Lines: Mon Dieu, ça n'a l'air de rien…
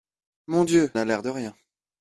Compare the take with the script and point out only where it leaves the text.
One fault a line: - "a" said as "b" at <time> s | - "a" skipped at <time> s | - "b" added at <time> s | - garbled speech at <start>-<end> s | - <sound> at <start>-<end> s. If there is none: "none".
- "ça" skipped at 0.9 s